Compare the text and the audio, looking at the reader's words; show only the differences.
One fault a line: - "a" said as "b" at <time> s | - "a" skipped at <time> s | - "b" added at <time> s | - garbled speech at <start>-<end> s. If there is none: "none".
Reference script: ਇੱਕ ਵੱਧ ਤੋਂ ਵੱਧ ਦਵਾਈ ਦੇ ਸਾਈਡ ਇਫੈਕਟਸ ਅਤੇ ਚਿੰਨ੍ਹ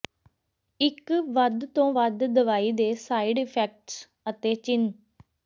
none